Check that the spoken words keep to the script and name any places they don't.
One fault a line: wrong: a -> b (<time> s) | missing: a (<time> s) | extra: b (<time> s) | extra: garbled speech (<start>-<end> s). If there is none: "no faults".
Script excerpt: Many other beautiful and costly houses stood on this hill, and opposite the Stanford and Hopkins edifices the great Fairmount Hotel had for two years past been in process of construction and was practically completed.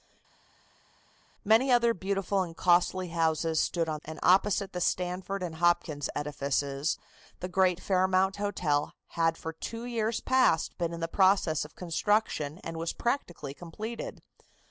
missing: this hill (4.0 s)